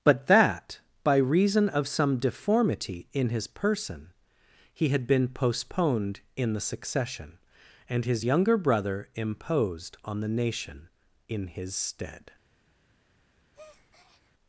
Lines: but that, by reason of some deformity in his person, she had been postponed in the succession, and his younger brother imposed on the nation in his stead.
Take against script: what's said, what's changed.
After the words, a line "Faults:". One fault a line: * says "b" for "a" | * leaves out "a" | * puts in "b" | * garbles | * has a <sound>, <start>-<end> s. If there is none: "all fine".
but that, by reason of some deformity in his person, he had been postponed in the succession, and his younger brother imposed on the nation in his stead.
Faults:
* says "he" for "she"
* has a breath, 13.5-14.3 s